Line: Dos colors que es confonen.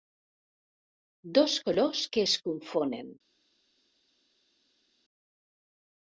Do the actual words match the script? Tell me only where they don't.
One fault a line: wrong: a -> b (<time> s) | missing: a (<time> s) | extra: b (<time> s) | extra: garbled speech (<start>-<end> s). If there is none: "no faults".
no faults